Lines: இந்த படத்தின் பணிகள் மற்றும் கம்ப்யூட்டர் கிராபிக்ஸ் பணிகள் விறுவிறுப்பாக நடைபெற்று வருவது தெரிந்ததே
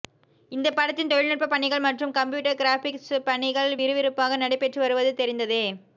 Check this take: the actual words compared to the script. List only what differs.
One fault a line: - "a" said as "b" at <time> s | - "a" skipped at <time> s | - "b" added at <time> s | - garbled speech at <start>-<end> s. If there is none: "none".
- "தொழில்நுட்ப" added at 1.1 s